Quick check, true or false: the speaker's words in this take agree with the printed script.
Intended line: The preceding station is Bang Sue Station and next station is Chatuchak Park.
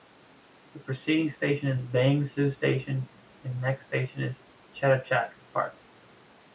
true